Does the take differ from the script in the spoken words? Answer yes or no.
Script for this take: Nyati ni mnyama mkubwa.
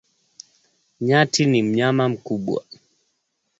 no